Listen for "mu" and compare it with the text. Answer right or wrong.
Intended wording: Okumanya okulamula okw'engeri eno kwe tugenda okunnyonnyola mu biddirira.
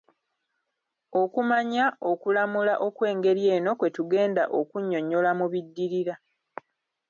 right